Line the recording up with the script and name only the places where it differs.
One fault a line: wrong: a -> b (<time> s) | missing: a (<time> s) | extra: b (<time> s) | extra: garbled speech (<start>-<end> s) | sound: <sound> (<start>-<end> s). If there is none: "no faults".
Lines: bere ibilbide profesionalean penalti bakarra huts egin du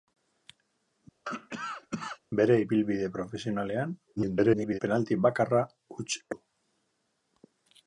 sound: cough (1.2-2.2 s)
extra: garbled speech (4.2-4.8 s)
missing: egin (6.1 s)